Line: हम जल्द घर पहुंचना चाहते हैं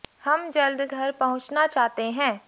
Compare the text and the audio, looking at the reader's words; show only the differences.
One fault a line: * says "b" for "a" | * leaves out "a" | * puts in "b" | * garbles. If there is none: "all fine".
all fine